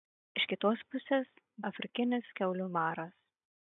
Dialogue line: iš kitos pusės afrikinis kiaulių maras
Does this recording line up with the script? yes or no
yes